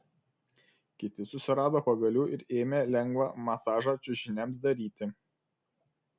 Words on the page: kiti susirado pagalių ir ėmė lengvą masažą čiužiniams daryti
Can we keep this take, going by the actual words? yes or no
yes